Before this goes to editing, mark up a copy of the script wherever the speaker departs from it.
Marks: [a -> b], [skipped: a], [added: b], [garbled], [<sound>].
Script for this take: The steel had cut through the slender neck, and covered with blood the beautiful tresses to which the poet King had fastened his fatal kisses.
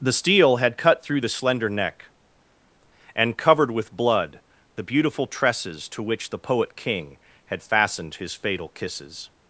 The steel had cut through the slender neck, and covered with blood the beautiful tresses to which the poet King had fastened his fatal kisses.